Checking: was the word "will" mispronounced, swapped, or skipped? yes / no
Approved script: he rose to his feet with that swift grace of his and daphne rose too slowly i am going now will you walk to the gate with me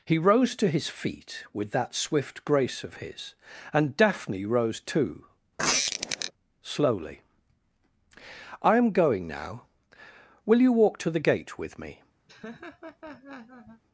no